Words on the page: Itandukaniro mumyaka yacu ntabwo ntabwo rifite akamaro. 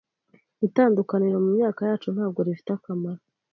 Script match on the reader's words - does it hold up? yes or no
no